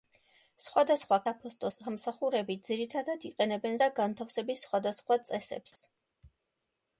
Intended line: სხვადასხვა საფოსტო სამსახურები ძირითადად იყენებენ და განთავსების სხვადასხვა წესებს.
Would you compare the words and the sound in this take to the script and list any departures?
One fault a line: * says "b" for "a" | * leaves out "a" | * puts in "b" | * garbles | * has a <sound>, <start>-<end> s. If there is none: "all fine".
* has a dropout, 5.7-5.8 s